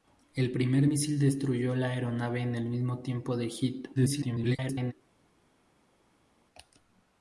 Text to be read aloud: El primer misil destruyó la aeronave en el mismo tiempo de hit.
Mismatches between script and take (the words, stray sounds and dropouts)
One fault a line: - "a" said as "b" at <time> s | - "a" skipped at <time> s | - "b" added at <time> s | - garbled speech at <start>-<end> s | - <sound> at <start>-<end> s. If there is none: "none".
- garbled speech at 4.0-4.9 s